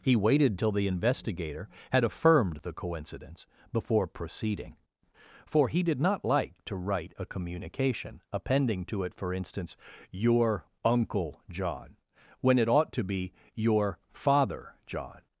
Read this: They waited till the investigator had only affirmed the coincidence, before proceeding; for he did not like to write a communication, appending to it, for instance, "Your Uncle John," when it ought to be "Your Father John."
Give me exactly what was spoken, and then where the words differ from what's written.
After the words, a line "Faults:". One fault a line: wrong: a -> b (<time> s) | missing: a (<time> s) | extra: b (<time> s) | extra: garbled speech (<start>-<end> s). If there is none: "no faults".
He waited till the investigator had affirmed the coincidence, before proceeding; for he did not like to write a communication, appending to it, for instance, "Your Uncle John," when it ought to be "Your Father John."
Faults:
wrong: They -> He (0.0 s)
missing: only (2.0 s)